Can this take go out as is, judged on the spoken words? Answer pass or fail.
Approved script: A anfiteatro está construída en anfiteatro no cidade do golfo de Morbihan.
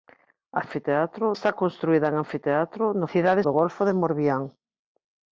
pass